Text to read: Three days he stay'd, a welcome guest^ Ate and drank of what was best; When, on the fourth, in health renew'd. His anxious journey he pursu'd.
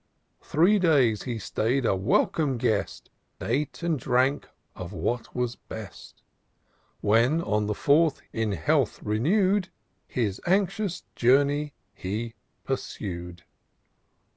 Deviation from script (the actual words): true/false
false